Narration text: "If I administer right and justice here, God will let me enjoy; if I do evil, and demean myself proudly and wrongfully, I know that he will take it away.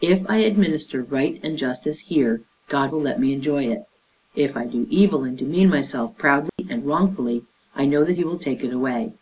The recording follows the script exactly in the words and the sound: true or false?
false